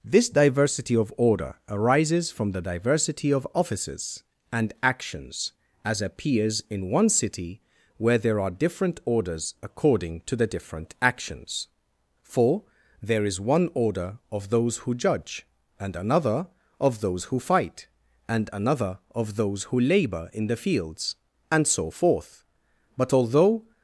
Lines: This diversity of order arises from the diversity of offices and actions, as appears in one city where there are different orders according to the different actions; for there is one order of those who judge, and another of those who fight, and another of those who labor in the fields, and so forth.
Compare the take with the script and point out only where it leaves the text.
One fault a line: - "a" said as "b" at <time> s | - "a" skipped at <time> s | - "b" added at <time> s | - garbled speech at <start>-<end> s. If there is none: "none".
- "But although" added at 23.0 s